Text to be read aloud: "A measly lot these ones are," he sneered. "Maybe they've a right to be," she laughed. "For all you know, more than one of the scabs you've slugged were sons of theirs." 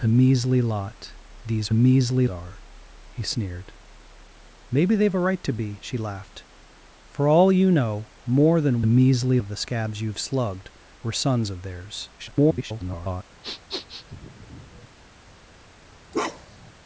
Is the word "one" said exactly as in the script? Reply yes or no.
no